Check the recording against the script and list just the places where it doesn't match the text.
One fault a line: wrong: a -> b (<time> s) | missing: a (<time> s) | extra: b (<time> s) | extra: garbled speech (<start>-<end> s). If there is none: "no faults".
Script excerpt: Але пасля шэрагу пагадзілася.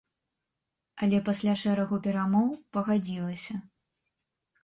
extra: перамоў (2.0 s)